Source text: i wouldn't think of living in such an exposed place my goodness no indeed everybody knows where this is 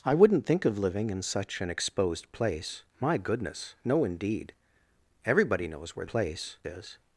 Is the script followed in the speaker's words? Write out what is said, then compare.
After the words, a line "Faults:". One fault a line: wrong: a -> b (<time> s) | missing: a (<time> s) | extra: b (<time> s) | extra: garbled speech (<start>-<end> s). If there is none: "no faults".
i wouldn't think of living in such an exposed place my goodness no indeed everybody knows where place is
Faults:
wrong: this -> place (6.0 s)